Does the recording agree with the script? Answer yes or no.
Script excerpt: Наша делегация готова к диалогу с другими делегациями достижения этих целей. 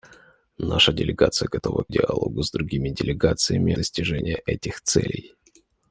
yes